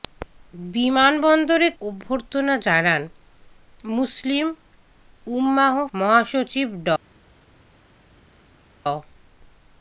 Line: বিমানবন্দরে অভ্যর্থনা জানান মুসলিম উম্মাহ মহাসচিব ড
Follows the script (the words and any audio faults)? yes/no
yes